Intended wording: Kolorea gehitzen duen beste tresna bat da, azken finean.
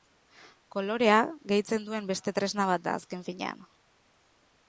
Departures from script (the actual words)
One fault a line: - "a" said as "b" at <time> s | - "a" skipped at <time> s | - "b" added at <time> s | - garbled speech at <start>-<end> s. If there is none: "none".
none